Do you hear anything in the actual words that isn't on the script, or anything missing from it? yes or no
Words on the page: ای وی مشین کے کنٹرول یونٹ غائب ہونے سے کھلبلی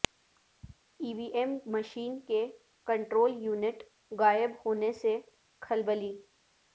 yes